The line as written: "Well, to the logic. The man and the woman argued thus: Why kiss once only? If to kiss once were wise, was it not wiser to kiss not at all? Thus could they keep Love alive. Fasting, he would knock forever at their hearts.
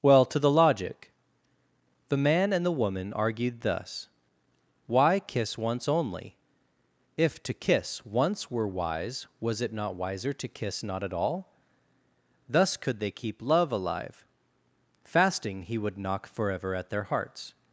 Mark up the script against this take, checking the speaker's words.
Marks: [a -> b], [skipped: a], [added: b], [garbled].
"Well, to the logic. The man and the woman argued thus: Why kiss once only? If to kiss once were wise, was it not wiser to kiss not at all? Thus could they keep Love alive. Fasting, he would knock forever at their hearts.